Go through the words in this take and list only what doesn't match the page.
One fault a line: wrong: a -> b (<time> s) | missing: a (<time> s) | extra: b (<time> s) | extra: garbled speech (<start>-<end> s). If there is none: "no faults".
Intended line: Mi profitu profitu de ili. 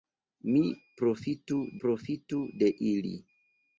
no faults